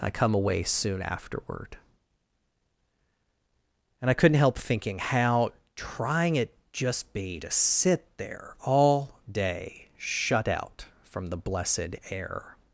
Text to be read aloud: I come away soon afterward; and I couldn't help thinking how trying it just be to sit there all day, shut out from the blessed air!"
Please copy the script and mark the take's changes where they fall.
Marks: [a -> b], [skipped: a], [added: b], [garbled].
I come away soon afterward; and I couldn't help thinking how trying it just be to sit there all day, shut out from the blessed air!"